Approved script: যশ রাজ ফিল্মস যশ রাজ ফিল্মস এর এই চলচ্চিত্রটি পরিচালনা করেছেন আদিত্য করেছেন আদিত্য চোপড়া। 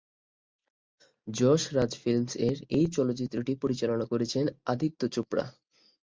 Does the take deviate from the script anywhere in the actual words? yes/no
yes